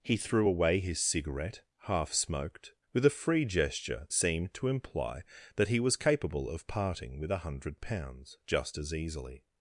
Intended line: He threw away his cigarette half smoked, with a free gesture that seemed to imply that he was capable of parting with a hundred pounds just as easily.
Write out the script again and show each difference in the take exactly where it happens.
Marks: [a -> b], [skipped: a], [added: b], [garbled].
He threw away his cigarette half smoked, with a free gesture [skipped: that] seemed to imply that he was capable of parting with a hundred pounds just as easily.